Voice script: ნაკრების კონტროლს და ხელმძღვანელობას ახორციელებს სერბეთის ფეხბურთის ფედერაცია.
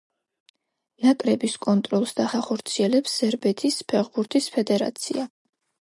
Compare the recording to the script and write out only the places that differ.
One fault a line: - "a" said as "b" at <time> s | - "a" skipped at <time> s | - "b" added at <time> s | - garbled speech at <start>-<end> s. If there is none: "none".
- "ხელმძღვანელობას" skipped at 2.2 s